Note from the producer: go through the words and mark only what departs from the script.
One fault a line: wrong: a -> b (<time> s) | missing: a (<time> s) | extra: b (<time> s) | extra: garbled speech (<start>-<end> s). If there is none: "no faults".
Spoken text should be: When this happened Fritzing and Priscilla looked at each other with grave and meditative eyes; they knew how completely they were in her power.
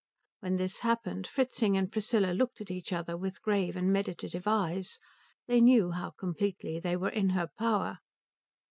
no faults